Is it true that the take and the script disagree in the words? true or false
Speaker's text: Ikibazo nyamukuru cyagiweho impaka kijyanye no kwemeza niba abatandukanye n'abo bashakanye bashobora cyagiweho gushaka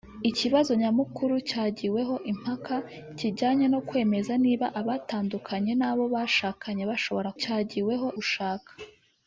false